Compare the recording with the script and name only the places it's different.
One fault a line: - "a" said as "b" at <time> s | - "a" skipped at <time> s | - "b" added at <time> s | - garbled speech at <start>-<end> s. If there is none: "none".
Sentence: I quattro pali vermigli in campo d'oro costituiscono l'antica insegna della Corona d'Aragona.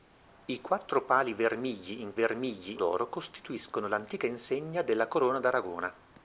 - "campo" said as "vermigli" at 2.1 s